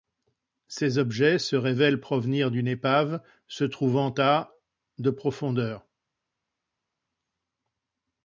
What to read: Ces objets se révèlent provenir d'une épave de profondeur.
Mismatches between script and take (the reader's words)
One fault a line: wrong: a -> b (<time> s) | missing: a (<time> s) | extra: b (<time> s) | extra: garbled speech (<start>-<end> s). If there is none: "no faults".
extra: se trouvant à (3.5 s)